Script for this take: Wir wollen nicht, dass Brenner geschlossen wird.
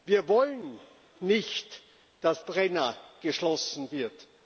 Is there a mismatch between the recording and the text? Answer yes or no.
no